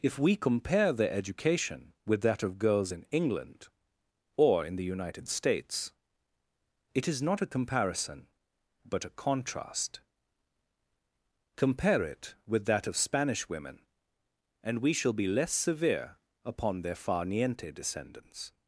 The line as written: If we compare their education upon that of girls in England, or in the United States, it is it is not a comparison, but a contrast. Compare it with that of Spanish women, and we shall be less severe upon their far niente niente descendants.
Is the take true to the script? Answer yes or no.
no